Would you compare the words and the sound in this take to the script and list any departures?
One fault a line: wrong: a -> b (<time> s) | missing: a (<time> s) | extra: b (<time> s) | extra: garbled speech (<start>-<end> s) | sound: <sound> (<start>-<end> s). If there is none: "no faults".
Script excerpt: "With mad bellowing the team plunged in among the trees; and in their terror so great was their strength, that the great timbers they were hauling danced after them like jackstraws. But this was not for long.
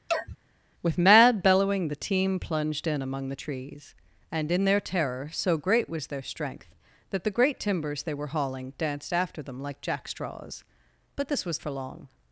sound: sneeze (0.1-0.4 s)
missing: not (11.6 s)